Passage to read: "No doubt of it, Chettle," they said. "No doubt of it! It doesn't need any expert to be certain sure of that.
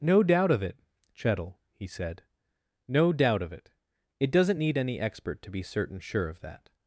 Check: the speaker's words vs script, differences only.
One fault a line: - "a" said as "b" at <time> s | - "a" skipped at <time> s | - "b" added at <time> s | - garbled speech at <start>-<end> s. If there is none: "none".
- "they" said as "he" at 1.7 s